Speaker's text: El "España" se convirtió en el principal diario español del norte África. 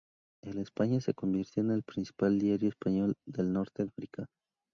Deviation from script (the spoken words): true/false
false